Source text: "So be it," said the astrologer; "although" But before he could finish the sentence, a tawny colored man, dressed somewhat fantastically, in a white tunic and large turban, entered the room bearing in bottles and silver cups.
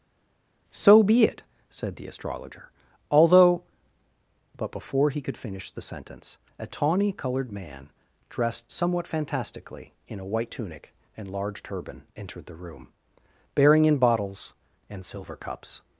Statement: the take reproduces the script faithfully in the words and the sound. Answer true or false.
true